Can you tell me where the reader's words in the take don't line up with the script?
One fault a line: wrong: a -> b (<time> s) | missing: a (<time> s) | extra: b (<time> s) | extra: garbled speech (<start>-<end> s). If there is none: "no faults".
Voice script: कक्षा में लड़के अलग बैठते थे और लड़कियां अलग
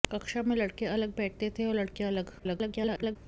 extra: garbled speech (2.4-3.2 s)